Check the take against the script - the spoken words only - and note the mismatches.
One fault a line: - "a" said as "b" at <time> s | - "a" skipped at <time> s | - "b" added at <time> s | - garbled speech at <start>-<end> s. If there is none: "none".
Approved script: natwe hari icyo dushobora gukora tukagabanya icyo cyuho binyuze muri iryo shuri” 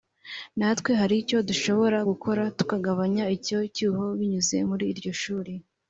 none